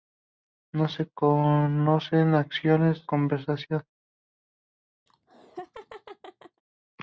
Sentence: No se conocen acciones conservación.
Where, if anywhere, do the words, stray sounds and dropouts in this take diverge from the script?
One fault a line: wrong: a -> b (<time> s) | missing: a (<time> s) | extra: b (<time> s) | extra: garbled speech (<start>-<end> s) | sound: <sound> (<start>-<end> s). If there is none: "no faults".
sound: laugh (5.1-6.6 s)